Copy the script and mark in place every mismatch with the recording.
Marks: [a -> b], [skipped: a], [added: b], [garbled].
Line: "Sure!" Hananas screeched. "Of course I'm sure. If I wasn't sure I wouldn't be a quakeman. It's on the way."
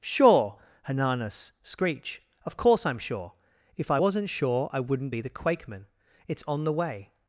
"Sure!" Hananas [screeched. -> screech] "Of course I'm sure. If I wasn't sure I wouldn't be [a -> the] quakeman. It's on the way."